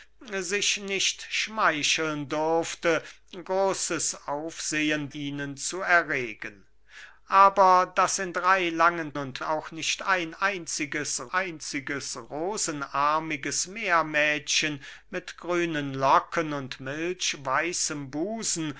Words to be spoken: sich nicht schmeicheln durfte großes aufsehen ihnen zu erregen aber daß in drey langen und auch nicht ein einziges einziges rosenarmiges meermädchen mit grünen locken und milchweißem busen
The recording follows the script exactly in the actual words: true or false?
true